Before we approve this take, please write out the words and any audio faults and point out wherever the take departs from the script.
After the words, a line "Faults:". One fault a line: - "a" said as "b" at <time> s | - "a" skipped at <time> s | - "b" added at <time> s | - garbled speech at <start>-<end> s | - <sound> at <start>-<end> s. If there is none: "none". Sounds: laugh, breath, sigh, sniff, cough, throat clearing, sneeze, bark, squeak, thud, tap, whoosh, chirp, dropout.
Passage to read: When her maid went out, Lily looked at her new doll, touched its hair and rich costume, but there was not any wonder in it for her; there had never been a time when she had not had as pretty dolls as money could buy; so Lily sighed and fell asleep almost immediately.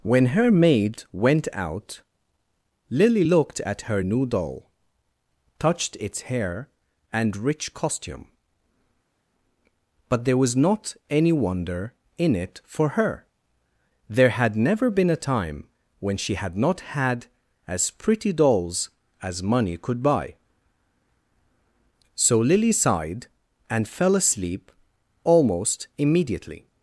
When her maid went out, Lily looked at her new doll, touched its hair and rich costume, but there was not any wonder in it for her; there had never been a time when she had not had as pretty dolls as money could buy; so Lily sighed and fell asleep almost immediately.
Faults:
none